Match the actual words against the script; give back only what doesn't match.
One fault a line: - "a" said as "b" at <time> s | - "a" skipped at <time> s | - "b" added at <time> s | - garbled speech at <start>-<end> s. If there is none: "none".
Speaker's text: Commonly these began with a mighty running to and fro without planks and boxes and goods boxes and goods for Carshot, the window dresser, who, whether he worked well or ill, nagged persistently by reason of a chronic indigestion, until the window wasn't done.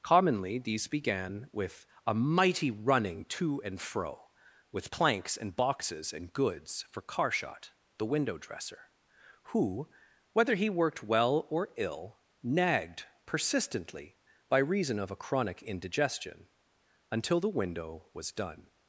- "without" said as "with" at 4.7 s
- "boxes and goods" skipped at 6.9 s
- "wasn't" said as "was" at 18.1 s